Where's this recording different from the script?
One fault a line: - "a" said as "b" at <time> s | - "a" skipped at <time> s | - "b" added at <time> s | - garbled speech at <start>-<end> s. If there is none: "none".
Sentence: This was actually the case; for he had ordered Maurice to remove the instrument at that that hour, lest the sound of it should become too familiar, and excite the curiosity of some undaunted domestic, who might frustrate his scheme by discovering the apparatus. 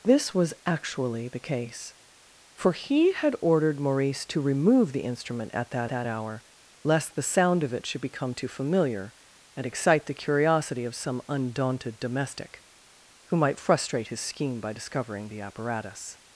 none